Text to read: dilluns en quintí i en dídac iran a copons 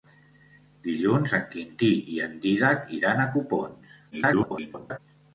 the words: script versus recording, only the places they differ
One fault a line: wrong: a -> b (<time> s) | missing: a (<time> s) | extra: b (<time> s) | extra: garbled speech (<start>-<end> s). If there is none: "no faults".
extra: garbled speech (4.1-5.0 s)